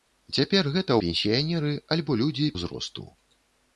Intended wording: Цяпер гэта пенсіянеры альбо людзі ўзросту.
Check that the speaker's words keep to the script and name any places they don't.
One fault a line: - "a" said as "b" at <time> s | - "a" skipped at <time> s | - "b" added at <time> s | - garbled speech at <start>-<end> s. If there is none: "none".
none